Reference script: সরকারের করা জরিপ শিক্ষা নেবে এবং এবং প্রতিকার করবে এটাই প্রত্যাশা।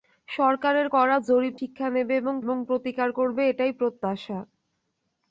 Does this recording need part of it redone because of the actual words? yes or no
no